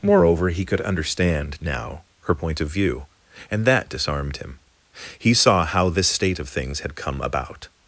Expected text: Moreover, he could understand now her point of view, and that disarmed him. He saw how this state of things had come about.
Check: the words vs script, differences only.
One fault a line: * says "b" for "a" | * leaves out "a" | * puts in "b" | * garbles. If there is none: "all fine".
all fine